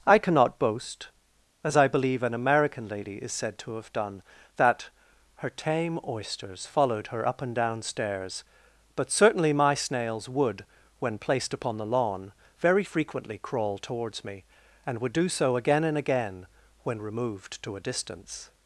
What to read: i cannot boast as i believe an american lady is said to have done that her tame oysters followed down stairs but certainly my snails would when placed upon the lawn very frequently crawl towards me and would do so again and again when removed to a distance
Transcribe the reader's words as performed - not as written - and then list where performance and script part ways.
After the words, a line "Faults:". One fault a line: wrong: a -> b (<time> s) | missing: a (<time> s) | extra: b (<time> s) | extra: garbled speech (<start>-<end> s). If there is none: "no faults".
i cannot boast as i believe an american lady is said to have done that her tame oysters followed her up and down stairs but certainly my snails would when placed upon the lawn very frequently crawl towards me and would do so again and again when removed to a distance
Faults:
extra: her up and (7.1 s)